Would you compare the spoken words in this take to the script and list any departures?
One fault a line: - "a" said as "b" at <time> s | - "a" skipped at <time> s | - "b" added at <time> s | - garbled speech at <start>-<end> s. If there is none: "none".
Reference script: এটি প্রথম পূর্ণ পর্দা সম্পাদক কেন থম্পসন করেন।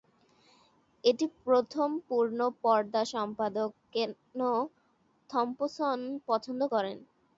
- "পছন্দ" added at 6.3 s